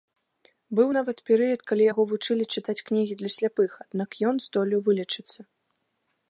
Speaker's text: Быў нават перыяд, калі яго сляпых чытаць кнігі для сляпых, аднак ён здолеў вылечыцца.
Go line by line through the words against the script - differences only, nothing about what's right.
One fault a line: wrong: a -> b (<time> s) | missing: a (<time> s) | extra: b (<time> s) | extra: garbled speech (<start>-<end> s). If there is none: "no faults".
wrong: сляпых -> вучылі (2.1 s)